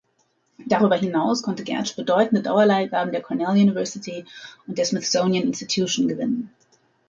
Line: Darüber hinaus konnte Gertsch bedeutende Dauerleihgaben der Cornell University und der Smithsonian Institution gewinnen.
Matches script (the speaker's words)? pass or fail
pass